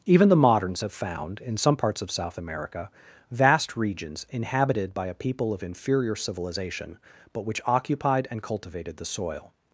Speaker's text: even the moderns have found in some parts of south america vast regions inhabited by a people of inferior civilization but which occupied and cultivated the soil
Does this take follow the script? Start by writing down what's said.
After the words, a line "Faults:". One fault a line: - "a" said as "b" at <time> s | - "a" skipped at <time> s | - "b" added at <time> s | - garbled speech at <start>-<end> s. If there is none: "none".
even the moderns have found in some parts of south america vast regions inhabited by a people of inferior civilization but which occupied and cultivated the soil
Faults:
none